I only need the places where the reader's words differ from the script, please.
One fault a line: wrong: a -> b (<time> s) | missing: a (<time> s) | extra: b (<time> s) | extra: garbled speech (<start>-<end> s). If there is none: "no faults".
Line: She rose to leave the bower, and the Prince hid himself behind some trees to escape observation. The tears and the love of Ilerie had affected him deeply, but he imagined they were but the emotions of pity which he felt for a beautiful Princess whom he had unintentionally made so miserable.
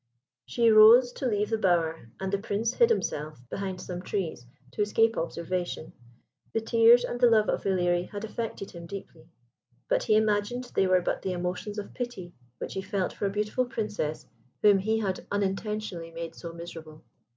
no faults